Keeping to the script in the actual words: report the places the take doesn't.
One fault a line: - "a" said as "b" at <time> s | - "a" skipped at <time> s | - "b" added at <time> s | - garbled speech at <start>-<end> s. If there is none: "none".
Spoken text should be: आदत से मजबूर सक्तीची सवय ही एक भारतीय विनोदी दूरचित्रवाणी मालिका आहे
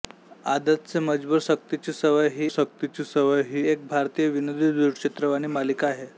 - "सक्तीची सवय ही" added at 2.5 s